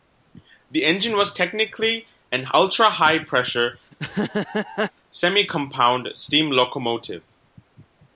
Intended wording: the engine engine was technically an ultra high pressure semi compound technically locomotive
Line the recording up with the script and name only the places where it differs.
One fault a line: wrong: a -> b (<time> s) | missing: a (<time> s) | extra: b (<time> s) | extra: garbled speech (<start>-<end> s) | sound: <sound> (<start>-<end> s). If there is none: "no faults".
missing: engine (1.1 s)
sound: laugh (3.9-4.9 s)
wrong: technically -> steam (6.2 s)